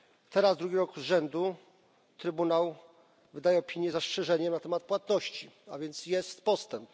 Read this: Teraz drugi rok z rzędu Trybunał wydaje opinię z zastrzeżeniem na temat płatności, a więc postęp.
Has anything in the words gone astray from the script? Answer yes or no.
yes